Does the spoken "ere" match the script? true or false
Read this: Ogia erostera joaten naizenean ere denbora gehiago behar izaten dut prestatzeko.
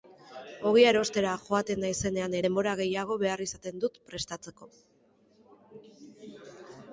false